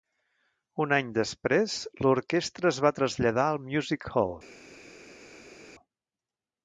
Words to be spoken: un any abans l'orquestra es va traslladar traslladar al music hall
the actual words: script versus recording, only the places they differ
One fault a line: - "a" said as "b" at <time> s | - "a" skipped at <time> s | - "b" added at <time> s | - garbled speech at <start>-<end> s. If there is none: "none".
- "abans" said as "després" at 1.2 s
- "traslladar" skipped at 3.5 s